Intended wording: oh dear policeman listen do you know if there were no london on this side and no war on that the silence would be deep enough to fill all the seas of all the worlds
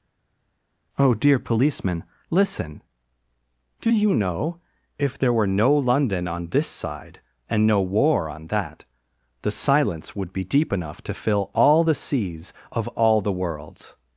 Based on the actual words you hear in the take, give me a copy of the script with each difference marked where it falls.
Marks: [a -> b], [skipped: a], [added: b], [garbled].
oh dear policeman listen do you know if there were no london on this side and no war on that the silence would be deep enough to fill all the seas of all the worlds